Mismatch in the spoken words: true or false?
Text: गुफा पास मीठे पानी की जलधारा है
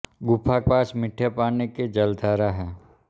false